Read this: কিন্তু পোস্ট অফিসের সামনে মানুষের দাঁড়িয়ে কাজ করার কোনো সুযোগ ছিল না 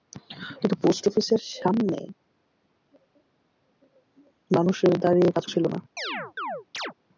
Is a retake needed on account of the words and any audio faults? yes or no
yes